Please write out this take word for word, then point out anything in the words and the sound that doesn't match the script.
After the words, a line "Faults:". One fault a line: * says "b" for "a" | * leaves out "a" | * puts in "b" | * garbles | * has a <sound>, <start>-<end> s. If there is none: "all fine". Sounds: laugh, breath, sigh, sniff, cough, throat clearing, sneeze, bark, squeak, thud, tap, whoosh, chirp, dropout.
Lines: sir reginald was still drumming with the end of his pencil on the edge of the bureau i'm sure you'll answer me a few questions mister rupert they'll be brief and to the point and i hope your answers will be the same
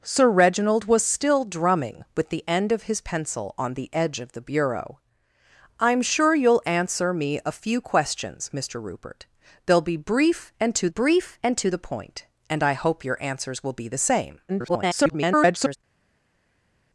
sir reginald was still drumming with the end of his pencil on the edge of the bureau i'm sure you'll answer me a few questions mister rupert they'll be brief and to brief and to the point and i hope your answers will be the same [garbled]
Faults:
* puts in "brief and to"
* garbles